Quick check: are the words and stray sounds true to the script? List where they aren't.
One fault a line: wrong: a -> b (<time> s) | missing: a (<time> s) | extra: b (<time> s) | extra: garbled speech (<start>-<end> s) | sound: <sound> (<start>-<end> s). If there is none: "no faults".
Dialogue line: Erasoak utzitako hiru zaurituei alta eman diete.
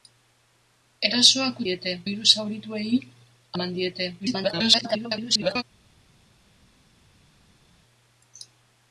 wrong: utzitako -> diete (1.7 s)
missing: alta (2.9 s)
extra: garbled speech (4.2-5.6 s)